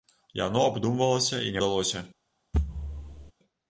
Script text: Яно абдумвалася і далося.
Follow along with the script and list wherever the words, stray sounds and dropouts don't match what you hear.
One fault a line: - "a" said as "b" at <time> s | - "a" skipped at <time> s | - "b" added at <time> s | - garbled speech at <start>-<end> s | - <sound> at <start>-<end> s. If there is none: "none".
- thud at 2.5-3.3 s